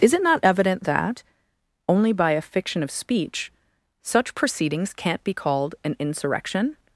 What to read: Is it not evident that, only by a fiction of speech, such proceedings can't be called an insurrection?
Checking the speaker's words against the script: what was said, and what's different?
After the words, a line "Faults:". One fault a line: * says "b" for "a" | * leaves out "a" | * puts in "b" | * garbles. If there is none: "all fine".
Is it not evident that, only by a fiction of speech, such proceedings can't be called an insurrection?
Faults:
all fine